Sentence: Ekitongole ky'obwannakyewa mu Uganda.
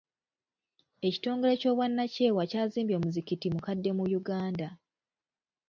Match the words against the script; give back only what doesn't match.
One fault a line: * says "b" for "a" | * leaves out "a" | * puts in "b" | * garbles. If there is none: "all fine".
* puts in "kyazimbye omuzikiti mukadde"